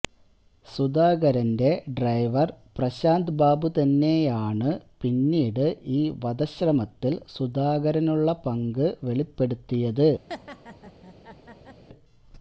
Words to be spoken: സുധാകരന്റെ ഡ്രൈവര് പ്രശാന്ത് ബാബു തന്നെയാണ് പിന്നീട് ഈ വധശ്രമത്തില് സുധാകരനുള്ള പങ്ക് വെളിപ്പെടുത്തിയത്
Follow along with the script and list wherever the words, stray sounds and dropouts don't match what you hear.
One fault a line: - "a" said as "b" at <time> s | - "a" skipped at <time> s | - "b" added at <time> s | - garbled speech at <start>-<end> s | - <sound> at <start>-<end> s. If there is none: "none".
- laugh at 10.3-11.8 s